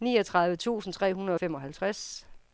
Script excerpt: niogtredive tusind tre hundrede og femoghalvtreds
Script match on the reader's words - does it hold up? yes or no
yes